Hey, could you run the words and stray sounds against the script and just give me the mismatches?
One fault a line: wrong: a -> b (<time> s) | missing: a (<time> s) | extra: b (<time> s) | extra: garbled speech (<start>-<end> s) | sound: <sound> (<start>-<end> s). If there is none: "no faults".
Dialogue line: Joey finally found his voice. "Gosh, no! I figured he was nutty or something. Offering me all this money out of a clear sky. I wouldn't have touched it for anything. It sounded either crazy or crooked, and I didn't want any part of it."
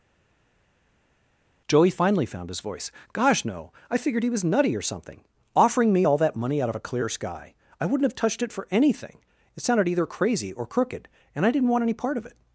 wrong: this -> that (6.2 s)